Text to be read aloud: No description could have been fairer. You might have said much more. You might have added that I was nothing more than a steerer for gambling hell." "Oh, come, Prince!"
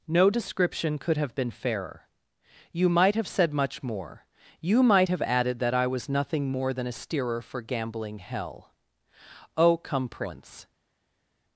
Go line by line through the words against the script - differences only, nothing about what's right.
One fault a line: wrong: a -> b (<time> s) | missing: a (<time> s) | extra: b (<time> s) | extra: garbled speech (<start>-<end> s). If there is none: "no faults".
no faults